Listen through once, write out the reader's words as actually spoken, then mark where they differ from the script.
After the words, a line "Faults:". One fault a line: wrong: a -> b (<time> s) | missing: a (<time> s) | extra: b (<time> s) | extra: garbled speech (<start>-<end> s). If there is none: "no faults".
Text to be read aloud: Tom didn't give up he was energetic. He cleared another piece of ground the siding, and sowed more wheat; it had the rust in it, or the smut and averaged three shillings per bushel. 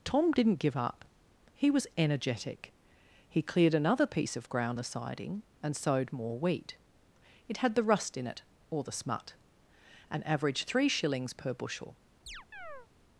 Tom didn't give up he was energetic. He cleared another piece of ground the siding, and sowed more wheat; it had the rust in it, or the smut and averaged three shillings per bushel.
Faults:
no faults